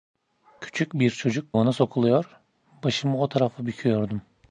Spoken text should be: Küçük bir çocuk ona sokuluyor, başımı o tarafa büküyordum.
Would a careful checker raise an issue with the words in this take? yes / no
no